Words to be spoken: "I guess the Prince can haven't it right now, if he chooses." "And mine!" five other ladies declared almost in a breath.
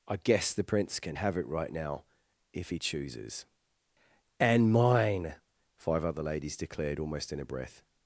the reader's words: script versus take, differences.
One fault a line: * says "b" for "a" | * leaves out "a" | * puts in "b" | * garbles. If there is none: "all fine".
* says "have" for "haven't"